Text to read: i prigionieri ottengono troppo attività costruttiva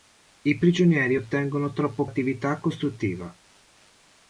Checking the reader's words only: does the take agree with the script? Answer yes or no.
yes